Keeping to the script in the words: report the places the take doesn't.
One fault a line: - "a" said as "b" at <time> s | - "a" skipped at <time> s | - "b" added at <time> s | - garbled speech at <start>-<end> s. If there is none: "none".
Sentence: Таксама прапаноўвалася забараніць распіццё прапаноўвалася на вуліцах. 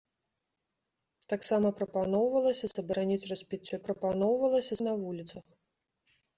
none